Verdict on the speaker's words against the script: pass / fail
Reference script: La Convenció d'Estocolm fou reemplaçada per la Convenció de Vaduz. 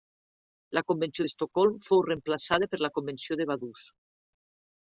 pass